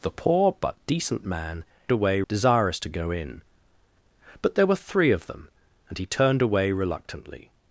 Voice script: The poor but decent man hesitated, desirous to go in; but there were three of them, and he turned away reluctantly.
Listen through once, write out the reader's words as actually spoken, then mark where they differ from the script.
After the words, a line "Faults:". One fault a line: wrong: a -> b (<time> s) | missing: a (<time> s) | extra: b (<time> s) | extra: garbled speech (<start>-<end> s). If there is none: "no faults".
The poor but decent man away, desirous to go in; but there were three of them, and he turned away reluctantly.
Faults:
wrong: hesitated -> away (1.9 s)